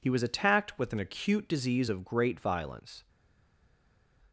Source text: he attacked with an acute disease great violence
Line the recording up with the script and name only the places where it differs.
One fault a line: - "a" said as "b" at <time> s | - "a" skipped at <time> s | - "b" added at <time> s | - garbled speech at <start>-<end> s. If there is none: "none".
- "was" added at 0.1 s
- "of" added at 1.9 s